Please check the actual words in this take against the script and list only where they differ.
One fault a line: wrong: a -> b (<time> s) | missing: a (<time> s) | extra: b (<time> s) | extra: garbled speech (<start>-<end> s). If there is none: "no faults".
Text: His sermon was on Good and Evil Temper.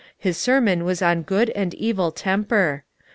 no faults